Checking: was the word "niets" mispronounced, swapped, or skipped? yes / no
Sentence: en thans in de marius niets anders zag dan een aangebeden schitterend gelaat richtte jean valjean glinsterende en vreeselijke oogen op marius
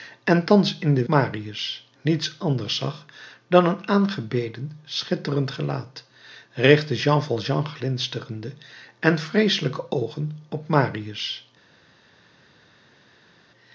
no